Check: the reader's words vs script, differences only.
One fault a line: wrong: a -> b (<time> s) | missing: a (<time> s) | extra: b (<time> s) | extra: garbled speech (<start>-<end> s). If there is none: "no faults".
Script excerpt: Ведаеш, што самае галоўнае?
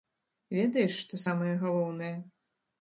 no faults